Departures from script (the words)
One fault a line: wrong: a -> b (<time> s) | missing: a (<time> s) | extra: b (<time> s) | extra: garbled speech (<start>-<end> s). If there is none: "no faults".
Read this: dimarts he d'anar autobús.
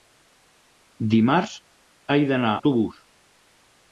no faults